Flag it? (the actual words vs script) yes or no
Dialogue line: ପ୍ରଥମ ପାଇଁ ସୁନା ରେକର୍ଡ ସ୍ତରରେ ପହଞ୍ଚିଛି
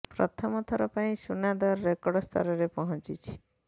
yes